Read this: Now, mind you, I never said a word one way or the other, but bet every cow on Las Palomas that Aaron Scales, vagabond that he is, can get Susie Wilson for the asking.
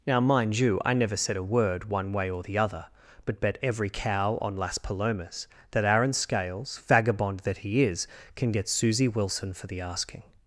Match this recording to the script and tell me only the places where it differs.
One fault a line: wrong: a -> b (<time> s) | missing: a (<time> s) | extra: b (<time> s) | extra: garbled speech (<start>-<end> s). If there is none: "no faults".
no faults